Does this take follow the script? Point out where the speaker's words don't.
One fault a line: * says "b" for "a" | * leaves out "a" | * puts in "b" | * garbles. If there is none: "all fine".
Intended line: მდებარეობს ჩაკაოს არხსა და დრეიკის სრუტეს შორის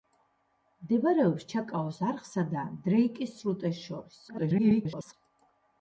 * garbles